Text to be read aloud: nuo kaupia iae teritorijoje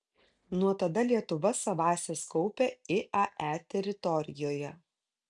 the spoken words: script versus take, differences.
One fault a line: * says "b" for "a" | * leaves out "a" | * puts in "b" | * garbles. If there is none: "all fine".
* puts in "tada lietuva savąsias"